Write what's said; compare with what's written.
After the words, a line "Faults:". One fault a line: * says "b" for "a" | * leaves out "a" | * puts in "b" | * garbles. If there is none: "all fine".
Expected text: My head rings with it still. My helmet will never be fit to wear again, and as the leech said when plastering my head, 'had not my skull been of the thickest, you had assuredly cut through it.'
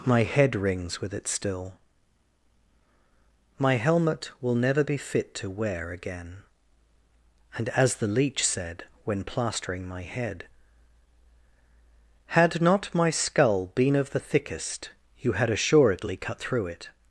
My head rings with it still. My helmet will never be fit to wear again, and as the leech said when plastering my head, 'had not my skull been of the thickest, you had assuredly cut through it.'
Faults:
all fine